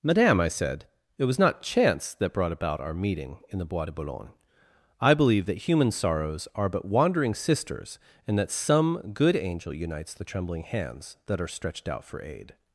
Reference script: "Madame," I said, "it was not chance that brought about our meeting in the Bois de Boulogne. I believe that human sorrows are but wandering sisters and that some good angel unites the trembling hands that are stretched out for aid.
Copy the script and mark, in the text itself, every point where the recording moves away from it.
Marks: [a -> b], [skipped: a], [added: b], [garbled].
"Madame," I said, "it was not chance that brought about our meeting in the Bois de Boulogne. I believe that human sorrows are but wandering sisters and that some good angel unites the trembling hands that are stretched out for aid.